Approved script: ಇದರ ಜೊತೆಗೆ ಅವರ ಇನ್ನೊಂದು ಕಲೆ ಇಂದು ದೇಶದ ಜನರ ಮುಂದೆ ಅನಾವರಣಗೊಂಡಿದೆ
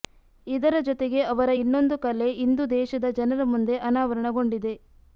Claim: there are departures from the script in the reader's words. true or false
false